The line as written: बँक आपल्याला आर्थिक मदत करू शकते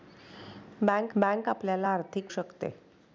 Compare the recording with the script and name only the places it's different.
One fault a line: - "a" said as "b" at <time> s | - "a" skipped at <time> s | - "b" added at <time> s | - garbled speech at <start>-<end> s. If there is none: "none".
- "बँक" added at 1.2 s
- "मदत करू" skipped at 2.3 s